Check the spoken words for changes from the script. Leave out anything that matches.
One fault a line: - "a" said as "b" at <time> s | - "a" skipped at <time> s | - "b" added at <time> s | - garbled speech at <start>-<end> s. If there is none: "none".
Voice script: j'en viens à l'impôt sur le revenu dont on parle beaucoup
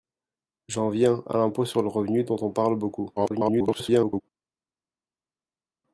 - garbled speech at 3.2-4.2 s